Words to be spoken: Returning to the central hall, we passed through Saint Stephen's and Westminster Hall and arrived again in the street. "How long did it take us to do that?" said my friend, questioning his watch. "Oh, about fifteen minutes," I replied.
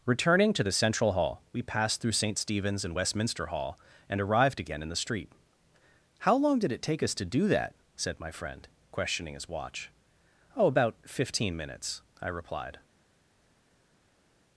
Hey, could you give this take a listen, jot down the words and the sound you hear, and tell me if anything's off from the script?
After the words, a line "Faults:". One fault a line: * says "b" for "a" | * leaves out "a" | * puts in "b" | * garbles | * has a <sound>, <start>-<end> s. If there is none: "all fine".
Returning to the central hall, we passed through Saint Stephen's and Westminster Hall and arrived again in the street. "How long did it take us to do that?" said my friend, questioning his watch. "Oh, about fifteen minutes," I replied.
Faults:
all fine